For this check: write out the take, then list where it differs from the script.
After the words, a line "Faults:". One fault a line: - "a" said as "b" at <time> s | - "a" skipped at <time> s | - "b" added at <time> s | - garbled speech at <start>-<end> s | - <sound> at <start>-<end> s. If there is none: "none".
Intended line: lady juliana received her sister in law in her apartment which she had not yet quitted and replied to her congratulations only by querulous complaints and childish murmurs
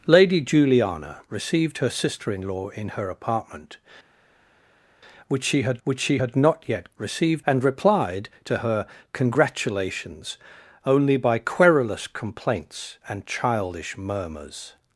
lady juliana received her sister in law in her apartment which she had which she had not yet received and replied to her congratulations only by querulous complaints and childish murmurs
Faults:
- "which she had" added at 5.8 s
- "quitted" said as "received" at 7.0 s